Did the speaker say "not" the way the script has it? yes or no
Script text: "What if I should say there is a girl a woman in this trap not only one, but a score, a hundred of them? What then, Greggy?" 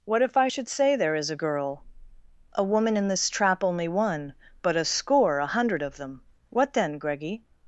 no